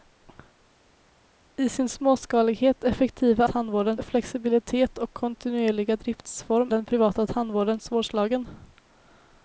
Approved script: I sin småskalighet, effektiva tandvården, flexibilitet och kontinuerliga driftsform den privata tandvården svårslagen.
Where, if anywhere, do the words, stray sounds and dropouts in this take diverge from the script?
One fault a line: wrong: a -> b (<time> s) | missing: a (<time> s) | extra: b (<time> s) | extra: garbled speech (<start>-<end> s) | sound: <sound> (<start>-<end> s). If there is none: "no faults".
no faults